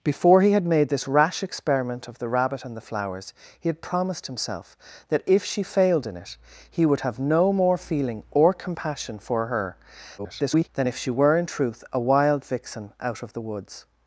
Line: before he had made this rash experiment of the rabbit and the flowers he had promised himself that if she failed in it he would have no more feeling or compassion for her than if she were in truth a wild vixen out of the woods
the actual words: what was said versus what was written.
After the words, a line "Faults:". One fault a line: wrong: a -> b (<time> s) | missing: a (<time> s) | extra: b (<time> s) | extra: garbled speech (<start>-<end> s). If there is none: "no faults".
before he had made this rash experiment of the rabbit and the flowers he had promised himself that if she failed in it he would have no more feeling or compassion for her [garbled] than if she were in truth a wild vixen out of the woods
Faults:
extra: garbled speech (10.2-10.7 s)